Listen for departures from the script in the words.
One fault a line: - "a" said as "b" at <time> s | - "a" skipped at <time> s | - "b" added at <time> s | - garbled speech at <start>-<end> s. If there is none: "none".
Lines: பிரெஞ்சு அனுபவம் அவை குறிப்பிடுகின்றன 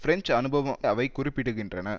none